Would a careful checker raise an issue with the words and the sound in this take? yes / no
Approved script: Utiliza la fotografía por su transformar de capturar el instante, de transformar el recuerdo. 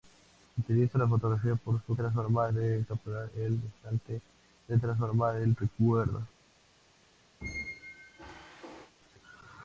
yes